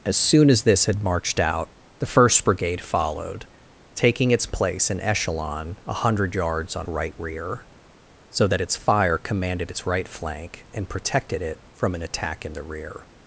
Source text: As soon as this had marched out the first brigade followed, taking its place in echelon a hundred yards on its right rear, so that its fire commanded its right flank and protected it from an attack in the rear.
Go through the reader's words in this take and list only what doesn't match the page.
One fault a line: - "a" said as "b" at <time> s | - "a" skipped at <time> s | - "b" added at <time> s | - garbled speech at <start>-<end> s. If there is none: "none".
- "its" skipped at 6.9 s